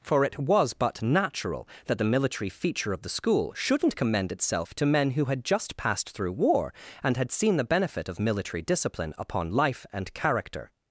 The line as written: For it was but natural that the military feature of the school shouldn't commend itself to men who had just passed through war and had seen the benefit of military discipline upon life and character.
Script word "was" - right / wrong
right